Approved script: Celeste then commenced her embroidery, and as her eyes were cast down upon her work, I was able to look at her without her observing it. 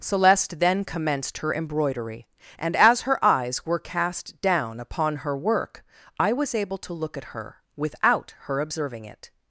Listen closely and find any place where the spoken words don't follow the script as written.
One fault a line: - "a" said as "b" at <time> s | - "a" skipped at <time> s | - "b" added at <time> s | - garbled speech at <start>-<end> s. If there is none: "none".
none